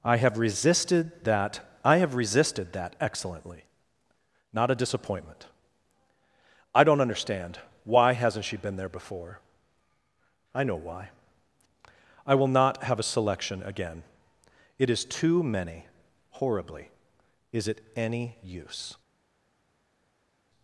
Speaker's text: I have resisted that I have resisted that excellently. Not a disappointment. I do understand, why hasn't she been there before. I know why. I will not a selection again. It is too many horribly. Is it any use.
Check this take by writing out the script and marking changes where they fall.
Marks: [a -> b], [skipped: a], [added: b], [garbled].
I have resisted that I have resisted that excellently. Not a disappointment. I [do -> don't] understand, why hasn't she been there before. I know why. I will not [added: have] a selection again. It is too many horribly. Is it any use.